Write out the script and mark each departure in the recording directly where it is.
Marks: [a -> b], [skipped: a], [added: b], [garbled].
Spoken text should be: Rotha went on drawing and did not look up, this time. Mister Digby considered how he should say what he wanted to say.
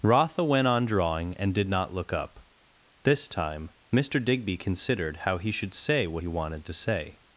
Rotha went on drawing and did not look up, this time. Mister Digby considered how he should say what he wanted to say.